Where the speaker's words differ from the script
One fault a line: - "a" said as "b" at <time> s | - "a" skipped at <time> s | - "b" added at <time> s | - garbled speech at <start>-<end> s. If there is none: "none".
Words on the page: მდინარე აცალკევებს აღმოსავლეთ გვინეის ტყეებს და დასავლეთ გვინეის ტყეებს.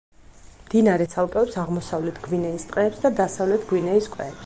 none